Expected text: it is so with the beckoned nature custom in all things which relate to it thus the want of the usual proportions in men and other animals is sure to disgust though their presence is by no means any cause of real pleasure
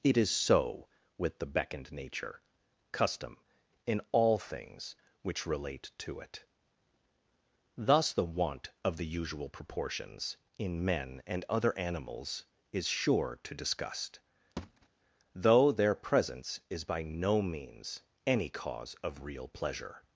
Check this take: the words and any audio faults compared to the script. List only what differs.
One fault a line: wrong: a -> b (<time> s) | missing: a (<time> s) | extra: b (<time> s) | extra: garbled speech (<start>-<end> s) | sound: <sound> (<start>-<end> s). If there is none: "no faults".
sound: thud (14.6-14.9 s)